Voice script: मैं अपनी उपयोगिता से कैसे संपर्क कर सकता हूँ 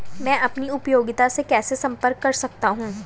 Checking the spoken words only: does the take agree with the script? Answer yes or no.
yes